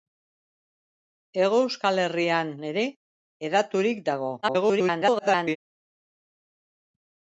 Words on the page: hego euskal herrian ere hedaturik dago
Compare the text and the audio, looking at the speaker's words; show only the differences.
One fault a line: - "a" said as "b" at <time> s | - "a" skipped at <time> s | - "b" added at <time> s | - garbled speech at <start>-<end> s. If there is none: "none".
- garbled speech at 4.4-5.6 s